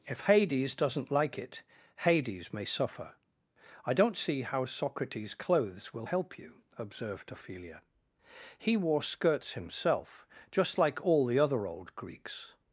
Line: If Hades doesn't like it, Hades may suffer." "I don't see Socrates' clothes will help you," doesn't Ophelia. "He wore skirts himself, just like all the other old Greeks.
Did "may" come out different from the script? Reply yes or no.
no